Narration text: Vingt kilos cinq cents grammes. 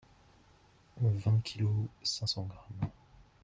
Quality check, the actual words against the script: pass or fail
pass